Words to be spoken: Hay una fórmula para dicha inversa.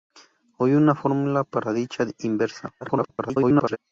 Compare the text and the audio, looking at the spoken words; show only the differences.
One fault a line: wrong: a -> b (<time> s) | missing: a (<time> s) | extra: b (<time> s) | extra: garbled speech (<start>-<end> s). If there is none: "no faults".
extra: garbled speech (2.8-3.8 s)